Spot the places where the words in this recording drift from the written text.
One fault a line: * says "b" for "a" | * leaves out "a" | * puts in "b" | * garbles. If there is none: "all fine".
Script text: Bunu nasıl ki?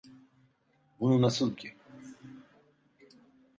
all fine